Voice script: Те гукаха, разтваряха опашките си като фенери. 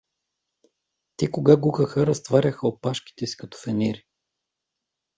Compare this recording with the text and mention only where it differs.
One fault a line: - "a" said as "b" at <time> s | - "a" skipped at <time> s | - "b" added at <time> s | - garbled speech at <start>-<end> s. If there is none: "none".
- "кога" added at 1.3 s